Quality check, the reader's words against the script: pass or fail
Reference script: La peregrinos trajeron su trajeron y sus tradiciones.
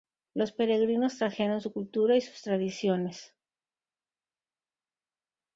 fail